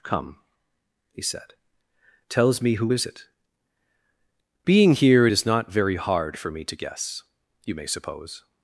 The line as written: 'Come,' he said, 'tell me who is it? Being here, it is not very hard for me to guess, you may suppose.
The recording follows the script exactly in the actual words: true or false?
false